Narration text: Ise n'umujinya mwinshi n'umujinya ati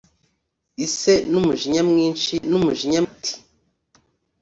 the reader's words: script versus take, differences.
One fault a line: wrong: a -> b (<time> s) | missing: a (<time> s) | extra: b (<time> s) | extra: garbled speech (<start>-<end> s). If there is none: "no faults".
no faults